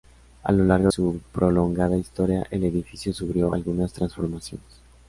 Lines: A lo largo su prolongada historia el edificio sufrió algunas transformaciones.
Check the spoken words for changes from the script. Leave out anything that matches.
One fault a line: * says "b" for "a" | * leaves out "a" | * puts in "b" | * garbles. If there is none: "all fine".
all fine